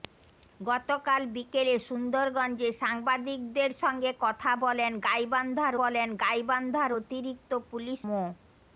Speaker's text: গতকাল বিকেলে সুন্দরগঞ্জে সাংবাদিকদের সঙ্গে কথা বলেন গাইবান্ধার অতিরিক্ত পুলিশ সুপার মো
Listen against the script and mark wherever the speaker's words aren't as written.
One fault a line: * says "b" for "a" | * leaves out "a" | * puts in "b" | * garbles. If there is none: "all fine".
* puts in "বলেন গাইবান্ধার"
* leaves out "সুপার"